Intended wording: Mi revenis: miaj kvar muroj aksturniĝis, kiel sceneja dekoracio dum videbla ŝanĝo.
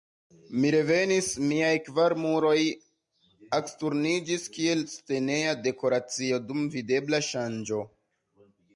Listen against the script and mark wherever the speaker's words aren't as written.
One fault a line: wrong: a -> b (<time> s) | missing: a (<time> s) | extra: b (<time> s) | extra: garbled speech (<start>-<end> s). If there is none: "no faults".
no faults